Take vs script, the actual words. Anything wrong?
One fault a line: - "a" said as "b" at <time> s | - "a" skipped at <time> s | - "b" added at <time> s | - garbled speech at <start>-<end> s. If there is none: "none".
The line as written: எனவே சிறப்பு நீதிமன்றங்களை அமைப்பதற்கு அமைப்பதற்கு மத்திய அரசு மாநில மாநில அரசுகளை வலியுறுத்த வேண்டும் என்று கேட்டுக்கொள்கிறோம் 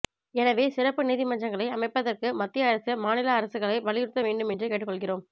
- "அமைப்பதற்கு" skipped at 2.3 s
- "மாநில" skipped at 3.3 s